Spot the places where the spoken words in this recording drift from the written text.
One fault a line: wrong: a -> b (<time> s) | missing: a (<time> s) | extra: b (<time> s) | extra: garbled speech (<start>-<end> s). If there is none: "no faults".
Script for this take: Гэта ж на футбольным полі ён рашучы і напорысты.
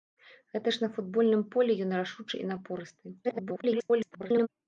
extra: garbled speech (3.2-4.5 s)